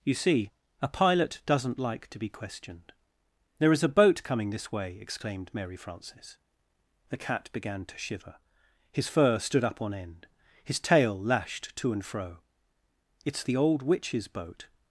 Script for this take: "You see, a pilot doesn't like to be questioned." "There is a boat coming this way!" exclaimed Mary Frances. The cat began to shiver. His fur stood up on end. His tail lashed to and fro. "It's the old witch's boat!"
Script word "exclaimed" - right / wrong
right